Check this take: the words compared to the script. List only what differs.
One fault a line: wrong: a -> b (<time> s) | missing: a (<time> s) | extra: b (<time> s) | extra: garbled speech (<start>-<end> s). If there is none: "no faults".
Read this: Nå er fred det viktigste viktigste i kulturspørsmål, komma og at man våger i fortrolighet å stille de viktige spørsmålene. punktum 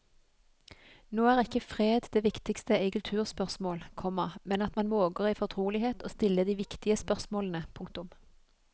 extra: ikke (1.4 s)
missing: viktigste (2.8 s)
wrong: og -> men (4.4 s)